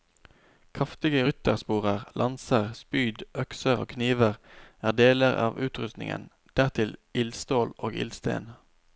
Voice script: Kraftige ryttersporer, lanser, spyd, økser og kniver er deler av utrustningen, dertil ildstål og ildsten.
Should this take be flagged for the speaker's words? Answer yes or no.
no